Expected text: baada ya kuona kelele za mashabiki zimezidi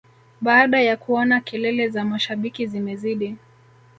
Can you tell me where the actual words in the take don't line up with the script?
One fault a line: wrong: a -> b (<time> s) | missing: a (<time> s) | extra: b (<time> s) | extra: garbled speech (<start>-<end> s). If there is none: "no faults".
no faults